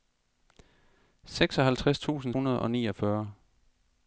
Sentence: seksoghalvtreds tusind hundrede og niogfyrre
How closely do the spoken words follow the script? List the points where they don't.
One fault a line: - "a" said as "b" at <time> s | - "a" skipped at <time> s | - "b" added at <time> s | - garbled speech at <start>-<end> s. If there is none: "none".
none